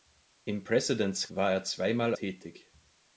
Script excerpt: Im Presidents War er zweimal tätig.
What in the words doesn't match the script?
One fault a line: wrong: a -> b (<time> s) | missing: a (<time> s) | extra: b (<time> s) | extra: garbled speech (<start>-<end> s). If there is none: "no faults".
no faults